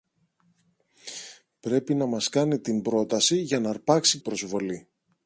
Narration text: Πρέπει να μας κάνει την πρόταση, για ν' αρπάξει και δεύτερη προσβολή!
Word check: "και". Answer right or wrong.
wrong